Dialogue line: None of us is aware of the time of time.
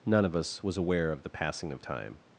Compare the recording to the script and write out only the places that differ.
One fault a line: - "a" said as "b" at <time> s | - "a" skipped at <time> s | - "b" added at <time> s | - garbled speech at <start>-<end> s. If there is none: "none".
- "is" said as "was" at 0.6 s
- "time" said as "passing" at 1.3 s